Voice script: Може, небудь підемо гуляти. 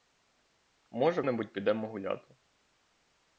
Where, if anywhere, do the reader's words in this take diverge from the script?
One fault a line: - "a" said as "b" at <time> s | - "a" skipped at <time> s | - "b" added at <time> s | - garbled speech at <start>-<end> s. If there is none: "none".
none